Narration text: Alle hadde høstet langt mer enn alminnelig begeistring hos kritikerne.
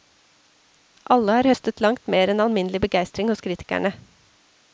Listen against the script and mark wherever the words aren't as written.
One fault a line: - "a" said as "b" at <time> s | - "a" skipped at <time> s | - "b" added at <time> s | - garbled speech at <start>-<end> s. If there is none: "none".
- "hadde" said as "har" at 1.4 s